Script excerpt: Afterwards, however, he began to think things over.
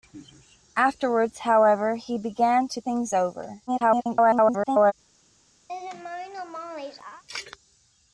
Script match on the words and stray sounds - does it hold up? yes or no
no